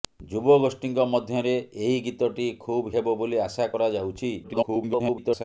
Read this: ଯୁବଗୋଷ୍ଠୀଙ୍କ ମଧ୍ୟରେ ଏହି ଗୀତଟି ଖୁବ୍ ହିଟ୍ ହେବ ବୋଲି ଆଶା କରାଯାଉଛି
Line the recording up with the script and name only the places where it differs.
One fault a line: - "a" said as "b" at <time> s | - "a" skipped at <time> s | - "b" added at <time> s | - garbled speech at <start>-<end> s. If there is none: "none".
- "ହିଟ୍" skipped at 2.9 s
- garbled speech at 4.4-5.4 s